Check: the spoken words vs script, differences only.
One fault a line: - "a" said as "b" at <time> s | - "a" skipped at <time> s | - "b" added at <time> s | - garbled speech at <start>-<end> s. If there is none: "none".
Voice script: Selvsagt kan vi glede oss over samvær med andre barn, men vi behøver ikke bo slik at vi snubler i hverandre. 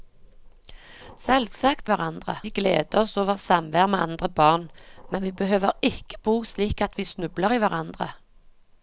- "kan" said as "hverandre" at 1.9 s